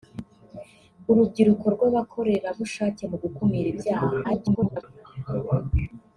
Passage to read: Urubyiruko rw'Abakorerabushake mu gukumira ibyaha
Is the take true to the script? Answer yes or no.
no